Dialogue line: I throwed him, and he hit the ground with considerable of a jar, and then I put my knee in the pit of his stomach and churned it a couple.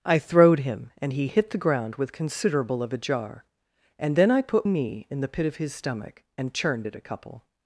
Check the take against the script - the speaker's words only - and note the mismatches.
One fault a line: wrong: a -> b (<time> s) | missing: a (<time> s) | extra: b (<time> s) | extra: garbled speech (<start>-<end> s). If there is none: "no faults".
missing: my (4.7 s)